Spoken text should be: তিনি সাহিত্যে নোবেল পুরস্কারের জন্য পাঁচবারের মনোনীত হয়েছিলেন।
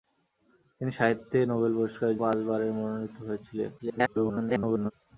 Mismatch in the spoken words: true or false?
true